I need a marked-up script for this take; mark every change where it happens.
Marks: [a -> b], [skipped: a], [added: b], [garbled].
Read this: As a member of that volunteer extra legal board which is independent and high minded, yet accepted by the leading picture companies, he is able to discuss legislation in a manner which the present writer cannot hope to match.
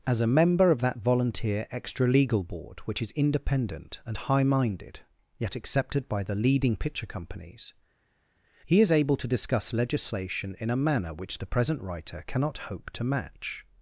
As a member of that volunteer extra legal board which is independent and high minded, yet accepted by the leading picture companies, he is able to discuss legislation in a manner which the present writer cannot hope to match.